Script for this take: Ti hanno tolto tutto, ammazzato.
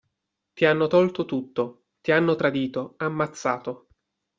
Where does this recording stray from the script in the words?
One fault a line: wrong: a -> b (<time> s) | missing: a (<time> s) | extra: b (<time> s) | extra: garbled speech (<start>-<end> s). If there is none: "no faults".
extra: ti hanno tradito (2.0 s)